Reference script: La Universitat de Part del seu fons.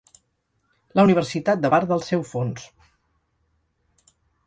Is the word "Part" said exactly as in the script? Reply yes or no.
yes